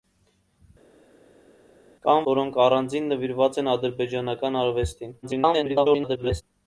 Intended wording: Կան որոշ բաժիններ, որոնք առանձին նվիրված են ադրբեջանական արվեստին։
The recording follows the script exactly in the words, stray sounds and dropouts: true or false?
false